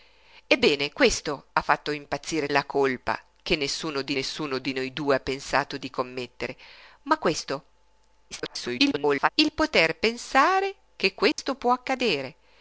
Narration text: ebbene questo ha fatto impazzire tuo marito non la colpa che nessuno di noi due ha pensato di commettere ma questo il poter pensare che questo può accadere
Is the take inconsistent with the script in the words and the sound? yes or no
yes